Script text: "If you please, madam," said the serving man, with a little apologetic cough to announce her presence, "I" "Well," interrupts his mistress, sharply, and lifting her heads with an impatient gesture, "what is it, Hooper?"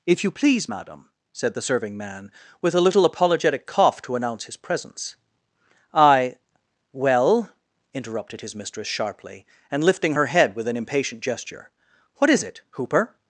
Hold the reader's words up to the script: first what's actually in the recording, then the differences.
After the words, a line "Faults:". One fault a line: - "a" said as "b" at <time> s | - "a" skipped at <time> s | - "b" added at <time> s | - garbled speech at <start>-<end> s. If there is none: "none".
"If you please, madam," said the serving man, with a little apologetic cough to announce his presence, "I" "Well," interrupted his mistress, sharply, and lifting her head with an impatient gesture, "what is it, Hooper?"
Faults:
- "her" said as "his" at 4.4 s
- "interrupts" said as "interrupted" at 7.9 s
- "heads" said as "head" at 10.3 s